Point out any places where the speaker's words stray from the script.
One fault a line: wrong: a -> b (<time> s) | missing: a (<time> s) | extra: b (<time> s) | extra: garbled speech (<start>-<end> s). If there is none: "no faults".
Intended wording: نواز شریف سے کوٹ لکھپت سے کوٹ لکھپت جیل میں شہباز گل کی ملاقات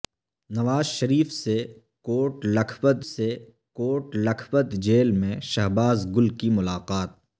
no faults